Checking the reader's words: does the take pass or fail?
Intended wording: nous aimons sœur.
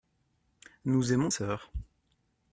pass